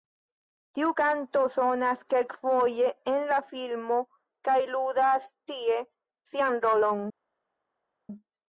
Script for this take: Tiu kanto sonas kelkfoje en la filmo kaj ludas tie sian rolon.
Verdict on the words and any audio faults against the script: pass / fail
pass